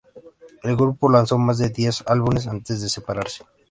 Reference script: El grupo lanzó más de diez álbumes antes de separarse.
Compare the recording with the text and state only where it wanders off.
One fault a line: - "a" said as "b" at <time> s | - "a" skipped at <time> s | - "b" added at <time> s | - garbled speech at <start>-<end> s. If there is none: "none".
none